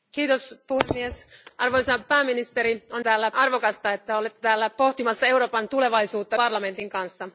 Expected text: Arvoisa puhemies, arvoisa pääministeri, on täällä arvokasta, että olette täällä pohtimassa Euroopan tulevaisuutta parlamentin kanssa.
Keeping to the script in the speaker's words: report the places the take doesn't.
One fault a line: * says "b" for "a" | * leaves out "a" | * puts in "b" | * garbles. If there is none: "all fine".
all fine